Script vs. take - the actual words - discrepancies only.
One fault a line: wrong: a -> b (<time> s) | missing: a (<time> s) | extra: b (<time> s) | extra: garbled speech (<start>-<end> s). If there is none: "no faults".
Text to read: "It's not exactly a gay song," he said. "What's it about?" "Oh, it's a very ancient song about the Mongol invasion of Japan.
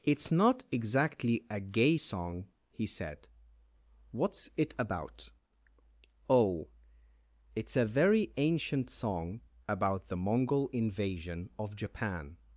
no faults